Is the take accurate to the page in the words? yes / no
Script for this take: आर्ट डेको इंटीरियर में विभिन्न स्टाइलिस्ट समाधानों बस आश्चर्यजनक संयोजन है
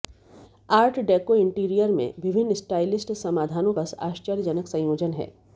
yes